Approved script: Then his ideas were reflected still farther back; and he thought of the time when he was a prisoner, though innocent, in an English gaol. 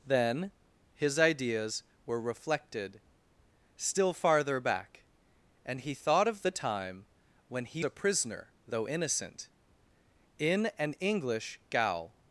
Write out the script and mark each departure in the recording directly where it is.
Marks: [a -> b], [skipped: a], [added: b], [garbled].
Then his ideas were reflected still farther back; and he thought of the time when he [skipped: was] a prisoner, though innocent, in an English gaol.